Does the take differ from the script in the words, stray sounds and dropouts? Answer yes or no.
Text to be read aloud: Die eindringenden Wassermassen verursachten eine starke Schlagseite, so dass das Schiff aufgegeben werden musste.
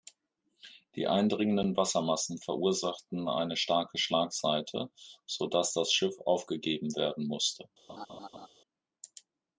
yes